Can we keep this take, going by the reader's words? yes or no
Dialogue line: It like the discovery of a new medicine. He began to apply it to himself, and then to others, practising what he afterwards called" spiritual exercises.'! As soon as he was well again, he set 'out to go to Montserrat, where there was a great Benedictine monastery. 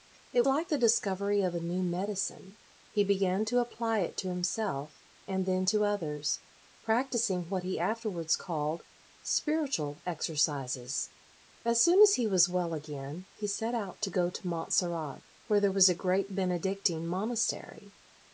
yes